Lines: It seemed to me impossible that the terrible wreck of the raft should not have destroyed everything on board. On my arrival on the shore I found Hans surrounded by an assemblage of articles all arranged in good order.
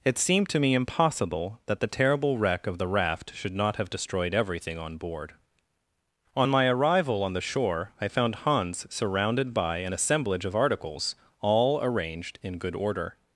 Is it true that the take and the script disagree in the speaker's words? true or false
false